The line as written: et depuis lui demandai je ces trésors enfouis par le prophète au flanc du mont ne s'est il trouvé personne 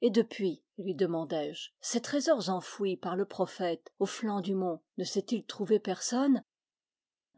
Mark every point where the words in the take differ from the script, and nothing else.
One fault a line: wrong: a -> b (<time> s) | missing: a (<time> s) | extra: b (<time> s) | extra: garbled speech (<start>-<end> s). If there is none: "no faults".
no faults